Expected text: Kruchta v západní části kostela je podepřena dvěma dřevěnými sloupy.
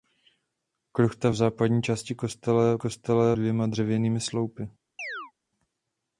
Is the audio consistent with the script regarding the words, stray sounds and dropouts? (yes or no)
no